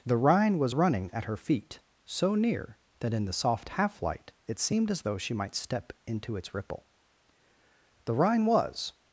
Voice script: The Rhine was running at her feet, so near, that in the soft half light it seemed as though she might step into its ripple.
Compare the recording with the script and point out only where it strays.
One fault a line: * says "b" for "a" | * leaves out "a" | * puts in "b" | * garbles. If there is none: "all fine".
* puts in "The Rhine was"